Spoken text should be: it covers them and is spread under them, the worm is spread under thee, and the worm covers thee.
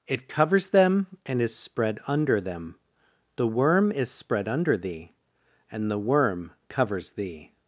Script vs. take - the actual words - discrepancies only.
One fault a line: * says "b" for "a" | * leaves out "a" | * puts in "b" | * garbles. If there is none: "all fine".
all fine